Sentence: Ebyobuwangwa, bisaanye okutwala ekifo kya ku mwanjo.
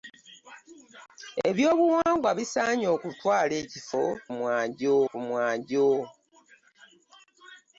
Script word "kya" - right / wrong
wrong